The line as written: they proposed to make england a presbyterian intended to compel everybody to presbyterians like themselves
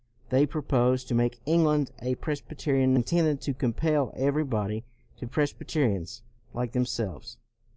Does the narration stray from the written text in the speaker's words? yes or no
no